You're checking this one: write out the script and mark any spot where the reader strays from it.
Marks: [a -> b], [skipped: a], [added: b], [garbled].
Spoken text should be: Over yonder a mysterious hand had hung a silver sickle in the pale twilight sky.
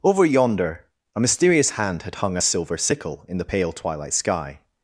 Over yonder a mysterious hand had hung a silver sickle in the pale twilight sky.